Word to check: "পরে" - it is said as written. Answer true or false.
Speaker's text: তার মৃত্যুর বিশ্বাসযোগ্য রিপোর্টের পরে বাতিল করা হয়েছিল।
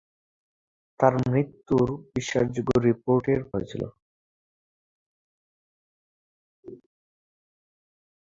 false